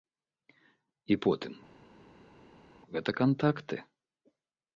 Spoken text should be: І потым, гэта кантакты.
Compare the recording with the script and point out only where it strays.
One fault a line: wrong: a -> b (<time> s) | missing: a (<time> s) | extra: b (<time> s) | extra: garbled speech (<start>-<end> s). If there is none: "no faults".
no faults